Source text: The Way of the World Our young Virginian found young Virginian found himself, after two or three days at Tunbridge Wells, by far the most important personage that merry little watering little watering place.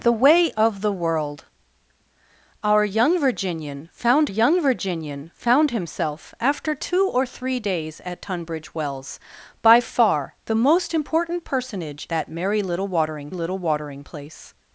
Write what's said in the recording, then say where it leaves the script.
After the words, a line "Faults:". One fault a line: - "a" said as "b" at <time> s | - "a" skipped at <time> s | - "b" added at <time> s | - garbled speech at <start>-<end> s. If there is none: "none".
The Way of the World Our young Virginian found young Virginian found himself, after two or three days at Tunbridge Wells, by far the most important personage that merry little watering little watering place.
Faults:
none